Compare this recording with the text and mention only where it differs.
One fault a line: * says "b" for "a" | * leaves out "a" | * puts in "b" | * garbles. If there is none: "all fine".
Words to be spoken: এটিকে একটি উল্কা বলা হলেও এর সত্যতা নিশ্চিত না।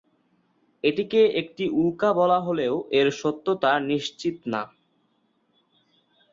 all fine